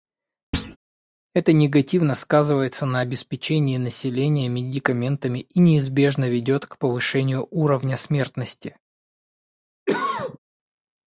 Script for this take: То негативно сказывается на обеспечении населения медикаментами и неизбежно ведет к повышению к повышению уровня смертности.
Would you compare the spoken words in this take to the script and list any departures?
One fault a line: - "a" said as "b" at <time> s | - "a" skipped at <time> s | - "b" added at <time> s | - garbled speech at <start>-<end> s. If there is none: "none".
- "То" said as "Это" at 1.3 s
- "к повышению" skipped at 7.5 s